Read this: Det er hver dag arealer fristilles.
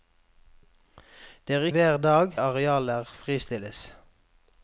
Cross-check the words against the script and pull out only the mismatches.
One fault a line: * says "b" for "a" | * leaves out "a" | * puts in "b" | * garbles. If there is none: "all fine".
all fine